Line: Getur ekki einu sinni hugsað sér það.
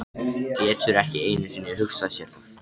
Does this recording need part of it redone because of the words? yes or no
no